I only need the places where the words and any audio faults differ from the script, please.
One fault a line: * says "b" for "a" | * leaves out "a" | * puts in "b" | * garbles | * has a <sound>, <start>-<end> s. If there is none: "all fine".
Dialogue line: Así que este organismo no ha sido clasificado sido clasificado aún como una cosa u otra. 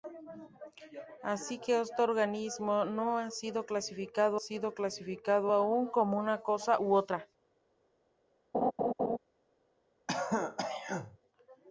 * has a laugh, 8.5-9.2 s
* has a throat clearing, 10.1-11.2 s